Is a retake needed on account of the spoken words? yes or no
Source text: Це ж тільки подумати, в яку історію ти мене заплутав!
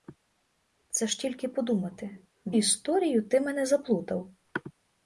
yes